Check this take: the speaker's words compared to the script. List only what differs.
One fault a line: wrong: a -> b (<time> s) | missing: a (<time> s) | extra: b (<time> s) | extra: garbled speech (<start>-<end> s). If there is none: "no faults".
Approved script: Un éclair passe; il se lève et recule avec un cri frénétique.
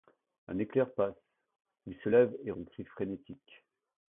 missing: recule avec (2.5 s)